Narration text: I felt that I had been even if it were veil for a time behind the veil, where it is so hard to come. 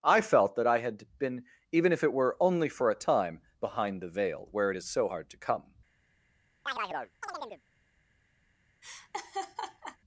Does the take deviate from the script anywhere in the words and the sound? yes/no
yes